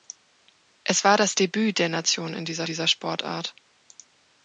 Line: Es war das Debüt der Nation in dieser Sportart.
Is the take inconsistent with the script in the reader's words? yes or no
yes